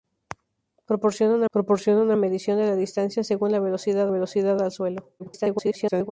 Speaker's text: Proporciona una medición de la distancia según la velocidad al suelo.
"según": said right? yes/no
yes